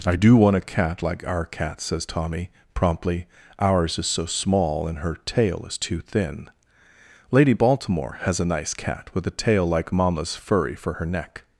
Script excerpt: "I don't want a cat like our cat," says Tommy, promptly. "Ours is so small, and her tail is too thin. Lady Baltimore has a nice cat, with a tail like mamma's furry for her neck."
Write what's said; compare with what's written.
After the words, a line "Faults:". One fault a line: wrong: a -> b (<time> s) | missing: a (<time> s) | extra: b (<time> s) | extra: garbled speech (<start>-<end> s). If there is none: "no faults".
"I do want a cat like our cat," says Tommy, promptly. "Ours is so small, and her tail is too thin. Lady Baltimore has a nice cat, with a tail like mamma's furry for her neck."
Faults:
wrong: don't -> do (0.1 s)